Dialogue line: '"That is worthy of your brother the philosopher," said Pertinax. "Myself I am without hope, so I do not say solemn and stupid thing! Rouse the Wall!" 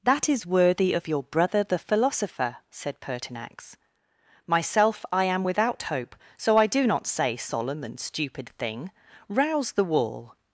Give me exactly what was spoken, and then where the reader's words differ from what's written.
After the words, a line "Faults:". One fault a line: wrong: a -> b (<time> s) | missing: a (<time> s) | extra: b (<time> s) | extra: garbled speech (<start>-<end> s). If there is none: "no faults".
'"That is worthy of your brother the philosopher," said Pertinax. "Myself I am without hope, so I do not say solemn and stupid thing! Rouse the Wall!"
Faults:
no faults